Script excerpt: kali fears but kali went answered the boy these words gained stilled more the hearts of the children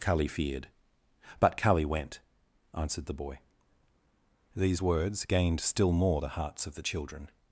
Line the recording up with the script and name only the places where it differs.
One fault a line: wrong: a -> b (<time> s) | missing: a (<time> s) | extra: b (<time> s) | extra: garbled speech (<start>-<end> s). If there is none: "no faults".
wrong: fears -> feared (0.3 s)
wrong: stilled -> still (5.6 s)